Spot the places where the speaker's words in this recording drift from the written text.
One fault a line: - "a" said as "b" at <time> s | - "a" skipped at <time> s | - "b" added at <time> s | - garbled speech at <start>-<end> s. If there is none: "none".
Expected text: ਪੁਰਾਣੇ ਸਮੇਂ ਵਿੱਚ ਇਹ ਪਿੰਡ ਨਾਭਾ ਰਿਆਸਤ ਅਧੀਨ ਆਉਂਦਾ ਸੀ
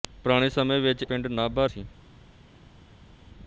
- "ਇਹ" skipped at 1.0 s
- "ਰਿਆਸਤ ਅਧੀਨ ਆਉਂਦਾ" skipped at 1.7 s